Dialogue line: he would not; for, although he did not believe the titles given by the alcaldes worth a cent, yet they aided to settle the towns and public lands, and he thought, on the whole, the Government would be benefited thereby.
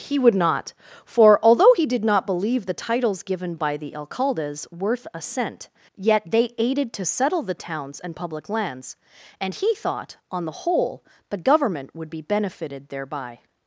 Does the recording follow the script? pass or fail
pass